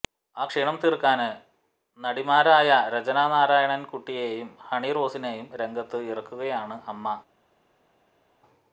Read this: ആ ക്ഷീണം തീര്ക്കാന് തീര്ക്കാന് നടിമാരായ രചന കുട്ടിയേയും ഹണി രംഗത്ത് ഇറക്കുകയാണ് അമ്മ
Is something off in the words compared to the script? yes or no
yes